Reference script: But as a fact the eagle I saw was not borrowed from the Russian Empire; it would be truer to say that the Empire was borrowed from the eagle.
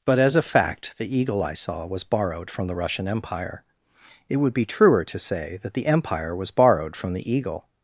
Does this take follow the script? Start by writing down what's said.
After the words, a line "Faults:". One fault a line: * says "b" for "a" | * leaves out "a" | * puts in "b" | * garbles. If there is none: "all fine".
But as a fact the eagle I saw was borrowed from the Russian Empire; it would be truer to say that the Empire was borrowed from the eagle.
Faults:
* leaves out "not"